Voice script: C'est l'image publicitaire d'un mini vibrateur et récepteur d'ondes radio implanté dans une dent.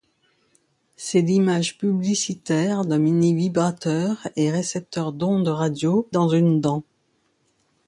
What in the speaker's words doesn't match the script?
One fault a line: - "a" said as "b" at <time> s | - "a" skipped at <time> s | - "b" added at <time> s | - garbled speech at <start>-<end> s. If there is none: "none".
- "implanté" skipped at 6.1 s